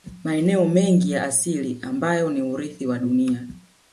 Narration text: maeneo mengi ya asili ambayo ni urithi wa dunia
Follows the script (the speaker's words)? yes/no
yes